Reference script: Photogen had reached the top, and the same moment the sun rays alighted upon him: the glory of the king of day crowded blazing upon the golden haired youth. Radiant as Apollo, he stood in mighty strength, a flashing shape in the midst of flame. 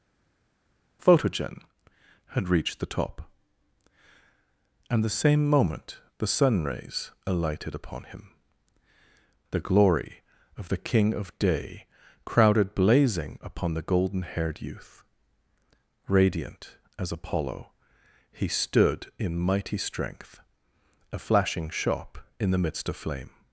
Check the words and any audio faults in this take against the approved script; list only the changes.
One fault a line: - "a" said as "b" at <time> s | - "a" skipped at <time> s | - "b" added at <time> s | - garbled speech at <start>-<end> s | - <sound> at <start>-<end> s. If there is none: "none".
- "shape" said as "shop" at 21.7 s